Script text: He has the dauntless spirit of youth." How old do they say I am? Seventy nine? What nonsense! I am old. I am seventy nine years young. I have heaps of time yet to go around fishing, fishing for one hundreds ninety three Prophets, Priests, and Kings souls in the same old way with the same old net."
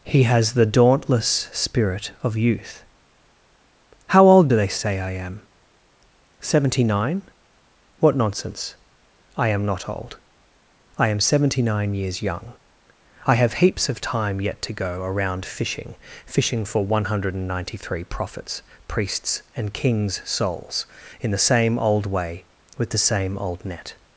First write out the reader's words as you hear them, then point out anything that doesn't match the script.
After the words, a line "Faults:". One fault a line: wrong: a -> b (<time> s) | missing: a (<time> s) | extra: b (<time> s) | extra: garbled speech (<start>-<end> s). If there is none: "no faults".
He has the dauntless spirit of youth." How old do they say I am? Seventy nine? What nonsense! I am not old. I am seventy nine years young. I have heaps of time yet to go around fishing, fishing for one hundred ninety three Prophets, Priests, and Kings souls in the same old way with the same old net."
Faults:
extra: not (9.7 s)
wrong: hundreds -> hundred (17.0 s)